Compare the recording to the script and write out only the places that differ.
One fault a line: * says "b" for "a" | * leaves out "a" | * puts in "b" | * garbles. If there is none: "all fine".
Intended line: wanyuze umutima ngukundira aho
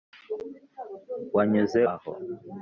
* leaves out "umutima ngukundira"